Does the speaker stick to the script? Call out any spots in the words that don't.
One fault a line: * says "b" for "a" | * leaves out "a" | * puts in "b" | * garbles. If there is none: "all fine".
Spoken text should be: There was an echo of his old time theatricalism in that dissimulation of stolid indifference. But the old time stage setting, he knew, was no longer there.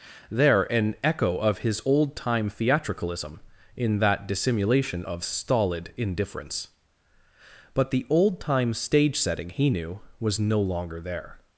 * leaves out "was"